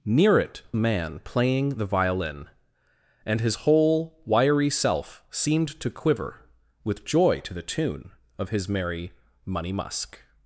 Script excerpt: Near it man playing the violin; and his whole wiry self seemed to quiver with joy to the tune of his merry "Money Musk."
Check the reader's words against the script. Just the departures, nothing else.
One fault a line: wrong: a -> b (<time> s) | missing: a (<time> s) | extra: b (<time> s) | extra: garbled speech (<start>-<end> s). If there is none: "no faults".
no faults